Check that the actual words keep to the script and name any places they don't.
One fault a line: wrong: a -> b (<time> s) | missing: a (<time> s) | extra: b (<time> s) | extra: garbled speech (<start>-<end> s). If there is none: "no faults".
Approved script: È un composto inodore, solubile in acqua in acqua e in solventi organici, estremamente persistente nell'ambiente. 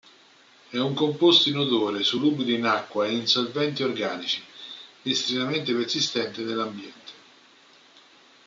missing: in acqua (3.0 s)